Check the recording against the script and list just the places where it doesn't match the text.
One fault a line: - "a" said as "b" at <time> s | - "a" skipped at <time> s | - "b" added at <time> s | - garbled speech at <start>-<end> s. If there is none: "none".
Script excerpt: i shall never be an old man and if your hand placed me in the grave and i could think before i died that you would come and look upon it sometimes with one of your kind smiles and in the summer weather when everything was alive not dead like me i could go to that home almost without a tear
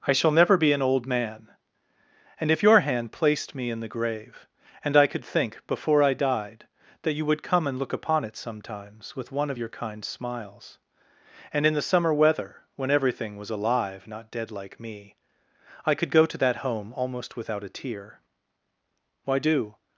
- "why do" added at 19.2 s